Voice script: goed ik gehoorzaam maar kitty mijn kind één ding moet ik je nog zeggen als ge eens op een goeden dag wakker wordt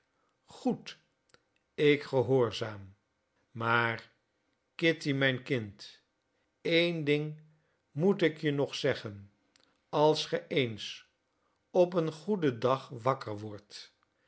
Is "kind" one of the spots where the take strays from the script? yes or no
no